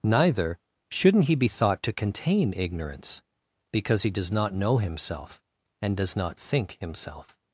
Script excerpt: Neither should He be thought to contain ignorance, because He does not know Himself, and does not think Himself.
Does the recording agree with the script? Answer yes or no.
no